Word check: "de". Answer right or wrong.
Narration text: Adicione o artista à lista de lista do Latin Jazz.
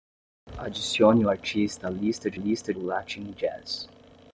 right